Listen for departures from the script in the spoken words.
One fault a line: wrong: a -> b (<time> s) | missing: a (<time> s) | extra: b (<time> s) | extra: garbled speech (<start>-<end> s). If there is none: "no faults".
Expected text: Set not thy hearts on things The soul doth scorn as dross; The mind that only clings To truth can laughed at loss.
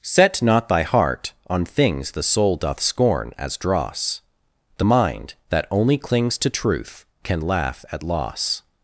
wrong: hearts -> heart (0.8 s)
wrong: laughed -> laugh (7.4 s)